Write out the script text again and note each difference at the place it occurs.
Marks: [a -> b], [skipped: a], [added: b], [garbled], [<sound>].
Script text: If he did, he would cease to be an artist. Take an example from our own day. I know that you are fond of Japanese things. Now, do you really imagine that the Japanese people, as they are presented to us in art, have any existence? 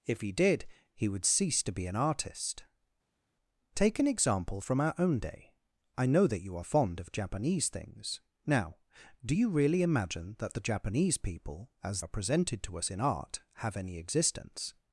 If he did, he would cease to be an artist. Take an example from our own day. I know that you are fond of Japanese things. Now, do you really imagine that the Japanese people, as [skipped: they] are presented to us in art, have any existence?